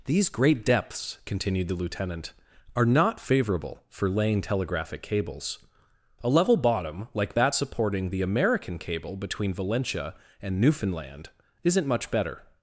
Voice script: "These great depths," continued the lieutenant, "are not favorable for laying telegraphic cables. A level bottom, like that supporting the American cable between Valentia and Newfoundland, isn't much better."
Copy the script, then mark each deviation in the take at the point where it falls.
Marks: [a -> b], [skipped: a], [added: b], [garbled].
"These great depths," continued the lieutenant, "are not favorable for laying telegraphic cables. A level bottom, like that supporting the American cable between Valentia and Newfoundland, isn't much better."